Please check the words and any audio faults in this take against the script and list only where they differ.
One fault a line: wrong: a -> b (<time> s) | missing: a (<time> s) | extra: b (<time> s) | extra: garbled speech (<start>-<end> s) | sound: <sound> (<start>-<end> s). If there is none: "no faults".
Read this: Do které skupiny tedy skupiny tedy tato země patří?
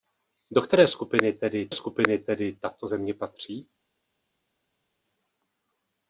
no faults